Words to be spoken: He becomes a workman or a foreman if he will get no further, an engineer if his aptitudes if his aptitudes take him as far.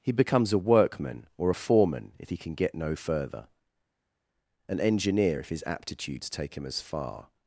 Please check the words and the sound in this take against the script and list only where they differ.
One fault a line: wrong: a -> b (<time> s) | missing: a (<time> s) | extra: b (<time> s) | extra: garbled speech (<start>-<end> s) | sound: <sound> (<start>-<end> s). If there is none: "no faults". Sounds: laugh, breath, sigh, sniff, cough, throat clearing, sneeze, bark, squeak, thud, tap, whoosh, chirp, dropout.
wrong: will -> can (2.4 s)
missing: if his aptitudes (6.3 s)